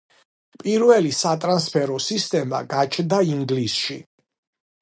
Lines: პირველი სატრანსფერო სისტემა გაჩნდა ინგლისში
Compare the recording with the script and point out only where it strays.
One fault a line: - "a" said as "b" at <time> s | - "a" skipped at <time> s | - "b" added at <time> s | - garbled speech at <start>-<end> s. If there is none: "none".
none